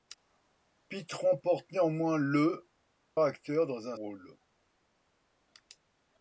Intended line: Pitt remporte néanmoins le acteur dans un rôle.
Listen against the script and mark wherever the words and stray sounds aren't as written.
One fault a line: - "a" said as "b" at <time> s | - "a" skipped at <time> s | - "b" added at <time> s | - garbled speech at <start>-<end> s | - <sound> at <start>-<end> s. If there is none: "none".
none